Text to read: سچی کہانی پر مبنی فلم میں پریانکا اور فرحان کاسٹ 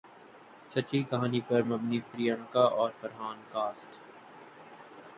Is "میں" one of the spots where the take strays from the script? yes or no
yes